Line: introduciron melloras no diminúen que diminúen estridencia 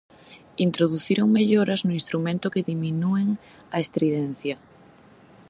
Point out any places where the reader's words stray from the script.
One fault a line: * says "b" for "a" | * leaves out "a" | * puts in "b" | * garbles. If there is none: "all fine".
* says "instrumento" for "diminúen"
* puts in "a"